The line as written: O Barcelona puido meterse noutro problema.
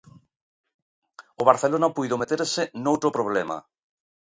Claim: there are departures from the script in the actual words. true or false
false